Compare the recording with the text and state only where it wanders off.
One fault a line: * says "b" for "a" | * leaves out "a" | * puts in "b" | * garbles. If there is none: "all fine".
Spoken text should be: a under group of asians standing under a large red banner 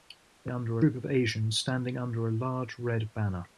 all fine